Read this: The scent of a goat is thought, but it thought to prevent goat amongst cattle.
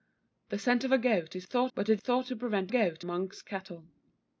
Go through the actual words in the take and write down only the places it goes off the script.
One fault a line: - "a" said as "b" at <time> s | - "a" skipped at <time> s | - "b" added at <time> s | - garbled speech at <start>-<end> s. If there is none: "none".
none